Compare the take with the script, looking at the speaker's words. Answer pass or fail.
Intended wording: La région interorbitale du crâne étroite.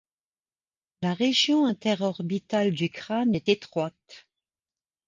fail